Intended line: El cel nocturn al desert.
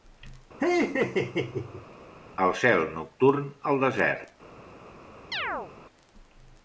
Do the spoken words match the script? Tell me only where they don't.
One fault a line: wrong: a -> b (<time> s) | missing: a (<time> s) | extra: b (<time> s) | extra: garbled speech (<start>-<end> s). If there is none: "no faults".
no faults